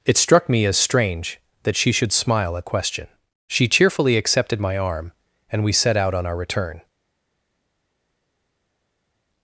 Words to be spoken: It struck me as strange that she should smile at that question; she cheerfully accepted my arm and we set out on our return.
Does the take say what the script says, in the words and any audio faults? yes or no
no